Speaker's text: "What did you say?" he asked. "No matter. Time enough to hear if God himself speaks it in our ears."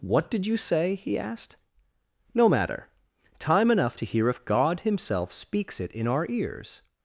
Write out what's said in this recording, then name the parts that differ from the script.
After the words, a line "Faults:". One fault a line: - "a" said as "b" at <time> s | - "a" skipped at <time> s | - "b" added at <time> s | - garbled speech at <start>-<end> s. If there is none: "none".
"What did you say?" he asked. "No matter. Time enough to hear if God himself speaks it in our ears."
Faults:
none